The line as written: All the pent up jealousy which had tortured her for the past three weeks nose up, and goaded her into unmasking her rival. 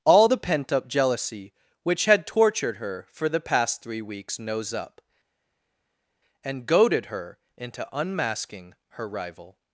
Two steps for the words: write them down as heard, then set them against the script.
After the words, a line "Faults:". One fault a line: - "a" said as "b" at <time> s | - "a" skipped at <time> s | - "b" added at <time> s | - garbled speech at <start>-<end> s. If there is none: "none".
All the pent up jealousy which had tortured her for the past three weeks nose up, and goaded her into unmasking her rival.
Faults:
none